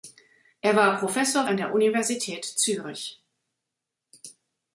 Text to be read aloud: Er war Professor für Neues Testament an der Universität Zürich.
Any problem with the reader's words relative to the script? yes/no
yes